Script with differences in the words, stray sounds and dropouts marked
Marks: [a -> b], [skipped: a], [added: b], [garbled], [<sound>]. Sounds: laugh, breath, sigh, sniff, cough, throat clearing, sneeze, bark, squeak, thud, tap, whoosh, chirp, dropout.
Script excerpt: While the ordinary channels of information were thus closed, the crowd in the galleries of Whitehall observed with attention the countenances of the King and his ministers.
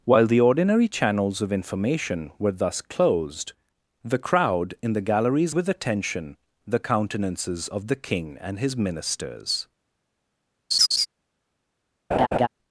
While the ordinary channels of information were thus closed, the crowd in the galleries [skipped: of Whitehall observed] with attention the countenances of the King and his ministers. [laugh] [laugh]